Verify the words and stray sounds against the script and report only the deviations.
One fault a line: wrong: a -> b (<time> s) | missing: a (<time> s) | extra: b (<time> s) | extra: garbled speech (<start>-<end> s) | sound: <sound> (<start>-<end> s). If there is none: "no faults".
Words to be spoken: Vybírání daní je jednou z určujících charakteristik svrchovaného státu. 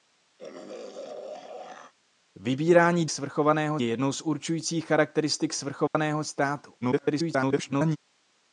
sound: throat clearing (0.4-1.9 s)
wrong: daní -> svrchovaného (3.1 s)
sound: dropout (5.9-5.9 s)
extra: garbled speech (6.8-8.0 s)